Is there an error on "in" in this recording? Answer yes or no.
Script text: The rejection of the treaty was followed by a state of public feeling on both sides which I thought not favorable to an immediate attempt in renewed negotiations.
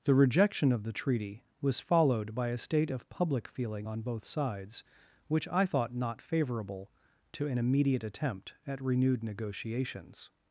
yes